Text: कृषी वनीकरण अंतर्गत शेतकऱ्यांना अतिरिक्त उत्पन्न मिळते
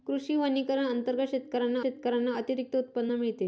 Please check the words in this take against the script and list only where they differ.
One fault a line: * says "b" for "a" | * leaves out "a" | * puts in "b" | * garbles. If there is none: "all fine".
* puts in "शेतकऱ्यांना"